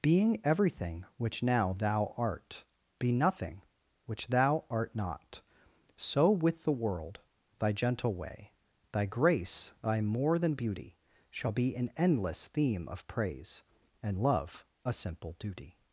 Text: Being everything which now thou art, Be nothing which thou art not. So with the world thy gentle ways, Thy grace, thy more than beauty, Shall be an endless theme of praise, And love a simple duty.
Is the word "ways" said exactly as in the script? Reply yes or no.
no